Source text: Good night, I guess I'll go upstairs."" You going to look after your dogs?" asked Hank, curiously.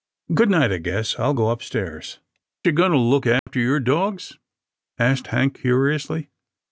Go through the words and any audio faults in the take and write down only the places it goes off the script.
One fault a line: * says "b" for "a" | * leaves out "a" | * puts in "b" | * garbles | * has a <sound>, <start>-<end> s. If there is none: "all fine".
* has a dropout, 3.4-3.5 s